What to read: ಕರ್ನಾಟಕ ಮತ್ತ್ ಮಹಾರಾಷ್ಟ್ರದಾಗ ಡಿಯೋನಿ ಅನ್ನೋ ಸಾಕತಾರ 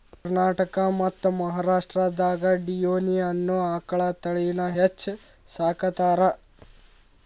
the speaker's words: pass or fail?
fail